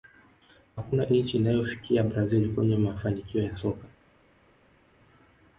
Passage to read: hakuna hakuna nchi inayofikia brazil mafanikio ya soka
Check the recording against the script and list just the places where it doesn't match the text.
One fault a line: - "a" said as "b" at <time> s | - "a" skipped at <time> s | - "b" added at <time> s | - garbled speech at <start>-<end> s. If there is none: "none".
- "hakuna" skipped at 1.1 s
- "kwenye" added at 2.5 s